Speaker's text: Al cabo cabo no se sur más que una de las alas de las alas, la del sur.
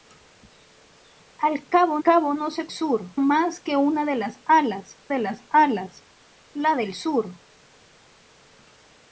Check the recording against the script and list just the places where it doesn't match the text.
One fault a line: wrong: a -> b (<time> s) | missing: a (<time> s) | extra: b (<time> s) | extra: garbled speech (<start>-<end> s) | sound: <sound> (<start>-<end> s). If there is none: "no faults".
no faults